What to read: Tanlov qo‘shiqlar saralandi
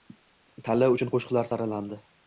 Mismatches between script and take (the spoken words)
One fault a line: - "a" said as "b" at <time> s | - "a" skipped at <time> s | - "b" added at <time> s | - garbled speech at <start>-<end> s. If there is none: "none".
- "uchun" added at 0.9 s